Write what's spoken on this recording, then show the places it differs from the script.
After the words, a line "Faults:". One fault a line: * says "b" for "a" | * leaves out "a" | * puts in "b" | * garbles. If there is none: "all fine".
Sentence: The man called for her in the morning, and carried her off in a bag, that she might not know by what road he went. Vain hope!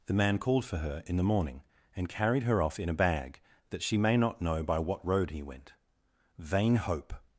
The man called for her in the morning, and carried her off in a bag, that she may not know by what road he went. Vain hope!
Faults:
* says "may" for "might"